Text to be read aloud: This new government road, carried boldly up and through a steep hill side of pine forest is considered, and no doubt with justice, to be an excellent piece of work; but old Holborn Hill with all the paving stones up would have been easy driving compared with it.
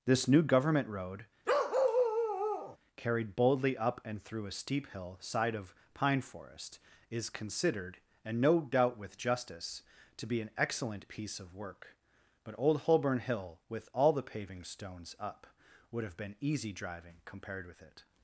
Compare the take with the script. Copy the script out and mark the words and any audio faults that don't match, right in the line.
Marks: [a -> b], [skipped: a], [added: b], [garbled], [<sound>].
This new government road, [bark] carried boldly up and through a steep hill side of pine forest is considered, and no doubt with justice, to be an excellent piece of work; but old Holborn Hill with all the paving stones up would have been easy driving compared with it.